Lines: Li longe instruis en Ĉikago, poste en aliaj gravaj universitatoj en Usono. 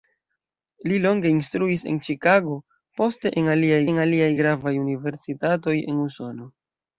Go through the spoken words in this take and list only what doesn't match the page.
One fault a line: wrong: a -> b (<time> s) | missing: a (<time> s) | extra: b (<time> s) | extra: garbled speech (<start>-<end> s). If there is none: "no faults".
extra: en aliaj (3.9 s)